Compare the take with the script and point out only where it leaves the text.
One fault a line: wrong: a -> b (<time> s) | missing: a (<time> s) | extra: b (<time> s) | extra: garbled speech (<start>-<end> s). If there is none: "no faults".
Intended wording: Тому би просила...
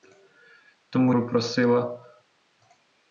no faults